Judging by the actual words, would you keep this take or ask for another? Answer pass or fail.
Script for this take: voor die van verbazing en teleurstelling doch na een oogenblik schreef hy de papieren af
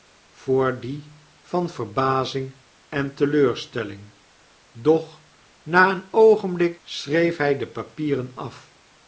pass